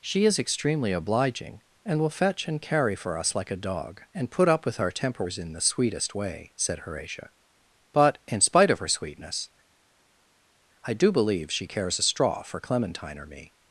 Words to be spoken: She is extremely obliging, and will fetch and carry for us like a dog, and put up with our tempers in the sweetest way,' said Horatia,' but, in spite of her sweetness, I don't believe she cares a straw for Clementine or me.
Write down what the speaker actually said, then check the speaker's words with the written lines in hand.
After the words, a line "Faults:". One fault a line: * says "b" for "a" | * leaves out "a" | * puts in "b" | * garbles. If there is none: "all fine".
She is extremely obliging, and will fetch and carry for us like a dog, and put up with our tempers in the sweetest way,' said Horatia,' but, in spite of her sweetness, I do believe she cares a straw for Clementine or me.
Faults:
* says "do" for "don't"